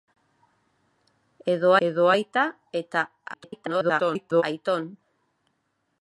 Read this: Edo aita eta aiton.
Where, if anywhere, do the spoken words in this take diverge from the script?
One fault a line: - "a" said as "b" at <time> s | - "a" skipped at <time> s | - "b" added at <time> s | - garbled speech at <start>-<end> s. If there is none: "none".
- "edo" added at 1.9 s
- garbled speech at 3.3-4.4 s